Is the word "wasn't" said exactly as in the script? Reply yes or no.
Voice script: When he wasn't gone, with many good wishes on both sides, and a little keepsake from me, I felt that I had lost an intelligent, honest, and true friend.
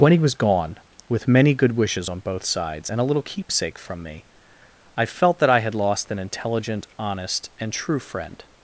no